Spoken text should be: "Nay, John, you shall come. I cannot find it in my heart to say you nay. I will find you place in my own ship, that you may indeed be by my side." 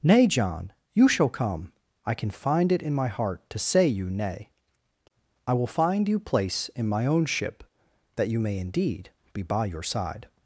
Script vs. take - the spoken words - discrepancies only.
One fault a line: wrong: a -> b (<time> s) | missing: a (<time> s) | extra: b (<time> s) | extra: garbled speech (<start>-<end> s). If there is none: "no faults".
wrong: cannot -> can (2.1 s)
wrong: my -> your (9.7 s)